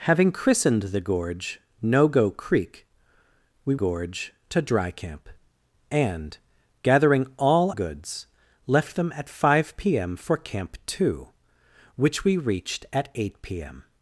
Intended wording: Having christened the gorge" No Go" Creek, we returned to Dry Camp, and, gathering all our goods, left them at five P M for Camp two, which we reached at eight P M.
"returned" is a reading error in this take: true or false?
true